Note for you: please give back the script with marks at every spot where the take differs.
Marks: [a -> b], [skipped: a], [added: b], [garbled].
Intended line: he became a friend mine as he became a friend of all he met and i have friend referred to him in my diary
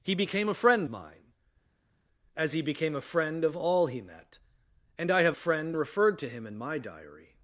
he became a friend mine as he became a friend of all he met and i have friend referred to him in my diary